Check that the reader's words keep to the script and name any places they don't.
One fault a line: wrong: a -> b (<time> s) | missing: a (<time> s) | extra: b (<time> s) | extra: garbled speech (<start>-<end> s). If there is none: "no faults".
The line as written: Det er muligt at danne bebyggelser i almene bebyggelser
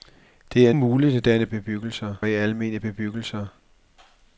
no faults